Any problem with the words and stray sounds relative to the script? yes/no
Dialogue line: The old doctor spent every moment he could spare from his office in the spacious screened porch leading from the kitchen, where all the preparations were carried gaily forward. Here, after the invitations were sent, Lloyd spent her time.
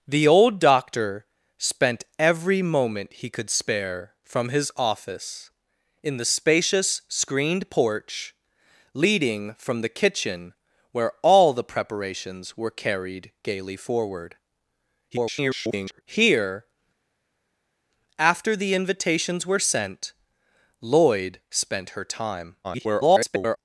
yes